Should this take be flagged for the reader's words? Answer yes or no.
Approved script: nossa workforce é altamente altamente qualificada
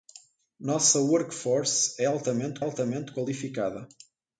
no